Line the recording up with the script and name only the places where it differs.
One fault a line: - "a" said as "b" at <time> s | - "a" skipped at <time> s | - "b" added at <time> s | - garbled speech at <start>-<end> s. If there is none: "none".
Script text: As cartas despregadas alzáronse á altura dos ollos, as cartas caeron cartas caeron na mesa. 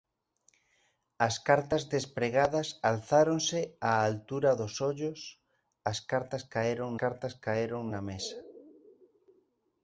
none